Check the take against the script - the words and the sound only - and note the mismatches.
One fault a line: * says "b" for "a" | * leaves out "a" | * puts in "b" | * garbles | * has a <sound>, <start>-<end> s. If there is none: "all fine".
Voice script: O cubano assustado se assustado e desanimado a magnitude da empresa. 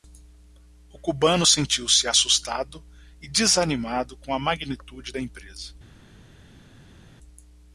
* says "sentiu" for "assustado"
* puts in "com"